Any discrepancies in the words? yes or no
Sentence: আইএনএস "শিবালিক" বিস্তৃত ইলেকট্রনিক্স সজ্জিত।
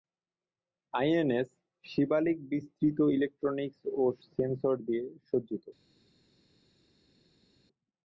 yes